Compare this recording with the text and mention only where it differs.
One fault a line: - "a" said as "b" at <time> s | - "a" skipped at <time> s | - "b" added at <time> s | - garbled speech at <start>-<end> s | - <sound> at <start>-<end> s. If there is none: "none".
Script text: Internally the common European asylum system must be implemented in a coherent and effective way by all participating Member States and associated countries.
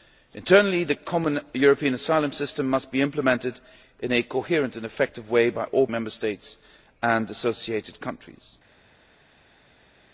- "participating" skipped at 5.9 s